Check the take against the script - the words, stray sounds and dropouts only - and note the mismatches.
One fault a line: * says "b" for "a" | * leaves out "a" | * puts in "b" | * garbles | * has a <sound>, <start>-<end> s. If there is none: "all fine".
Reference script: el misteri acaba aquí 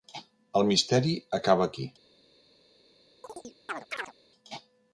* has a chirp, 3.2-4.1 s